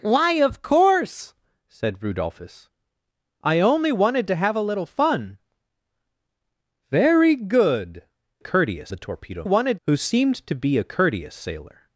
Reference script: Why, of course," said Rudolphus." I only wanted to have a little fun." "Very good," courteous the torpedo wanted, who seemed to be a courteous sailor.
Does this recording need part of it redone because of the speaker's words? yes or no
no